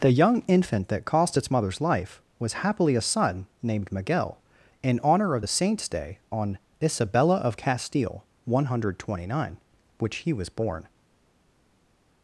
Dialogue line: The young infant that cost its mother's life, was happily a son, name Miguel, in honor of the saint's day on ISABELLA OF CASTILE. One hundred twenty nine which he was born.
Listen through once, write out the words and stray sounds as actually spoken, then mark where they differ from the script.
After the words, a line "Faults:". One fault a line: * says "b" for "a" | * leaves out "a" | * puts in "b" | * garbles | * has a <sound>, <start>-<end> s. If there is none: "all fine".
The young infant that cost its mother's life, was happily a son, named Miguel, in honor of the saint's day on ISABELLA OF CASTILE. One hundred twenty nine which he was born.
Faults:
* says "named" for "name"